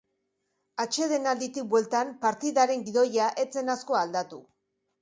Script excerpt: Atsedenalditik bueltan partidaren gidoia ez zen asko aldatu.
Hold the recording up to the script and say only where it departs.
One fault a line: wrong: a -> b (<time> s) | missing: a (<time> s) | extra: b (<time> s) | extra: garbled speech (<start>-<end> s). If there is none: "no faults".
no faults